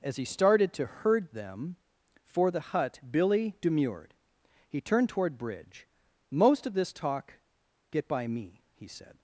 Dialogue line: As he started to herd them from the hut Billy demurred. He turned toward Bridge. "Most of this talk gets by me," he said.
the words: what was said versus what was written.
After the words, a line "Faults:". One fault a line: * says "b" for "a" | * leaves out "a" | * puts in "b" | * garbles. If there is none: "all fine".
As he started to herd them for the hut Billy demurred. He turned toward Bridge. "Most of this talk get by me," he said.
Faults:
* says "for" for "from"
* says "get" for "gets"